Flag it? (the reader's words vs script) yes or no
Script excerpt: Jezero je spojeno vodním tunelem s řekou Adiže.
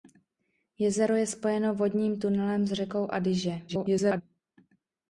yes